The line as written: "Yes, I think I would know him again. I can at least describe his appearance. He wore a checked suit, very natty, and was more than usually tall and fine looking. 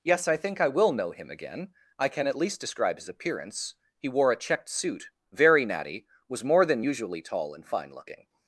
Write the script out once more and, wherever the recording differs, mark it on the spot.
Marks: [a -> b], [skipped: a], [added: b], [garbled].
"Yes, I think I [would -> will] know him again. I can at least describe his appearance. He wore a checked suit, very natty, [skipped: and] was more than usually tall and fine looking.